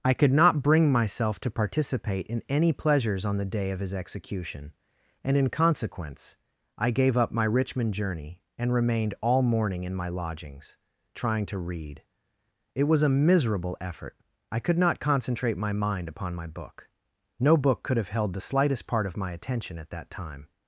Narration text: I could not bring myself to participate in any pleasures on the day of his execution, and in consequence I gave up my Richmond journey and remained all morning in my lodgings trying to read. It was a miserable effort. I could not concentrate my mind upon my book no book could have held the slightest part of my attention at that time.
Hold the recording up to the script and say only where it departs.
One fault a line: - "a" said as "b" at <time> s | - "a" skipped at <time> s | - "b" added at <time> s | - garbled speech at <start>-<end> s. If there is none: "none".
none